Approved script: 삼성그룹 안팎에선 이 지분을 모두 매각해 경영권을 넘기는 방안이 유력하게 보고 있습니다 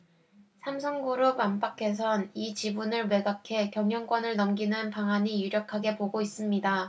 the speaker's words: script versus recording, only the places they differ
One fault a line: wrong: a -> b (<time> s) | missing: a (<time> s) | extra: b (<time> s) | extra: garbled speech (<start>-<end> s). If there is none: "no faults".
missing: 모두 (3.1 s)